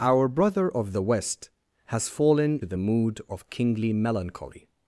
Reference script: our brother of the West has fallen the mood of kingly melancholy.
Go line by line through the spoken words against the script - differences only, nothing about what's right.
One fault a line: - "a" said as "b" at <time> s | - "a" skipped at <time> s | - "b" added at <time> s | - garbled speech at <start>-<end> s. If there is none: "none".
none